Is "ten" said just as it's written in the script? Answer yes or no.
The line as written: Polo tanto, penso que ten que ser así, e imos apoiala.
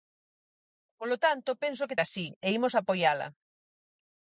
no